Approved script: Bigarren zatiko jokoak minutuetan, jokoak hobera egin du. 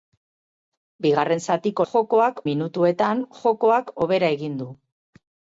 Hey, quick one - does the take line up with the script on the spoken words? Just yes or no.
yes